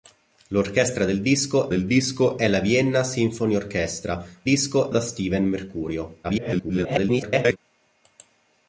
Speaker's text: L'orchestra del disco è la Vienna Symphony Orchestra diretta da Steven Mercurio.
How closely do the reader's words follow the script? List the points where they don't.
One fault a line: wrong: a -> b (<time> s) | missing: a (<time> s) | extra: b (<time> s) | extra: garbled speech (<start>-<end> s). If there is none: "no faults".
extra: del disco (1.7 s)
wrong: diretta -> disco (4.4 s)
extra: garbled speech (6.2-7.6 s)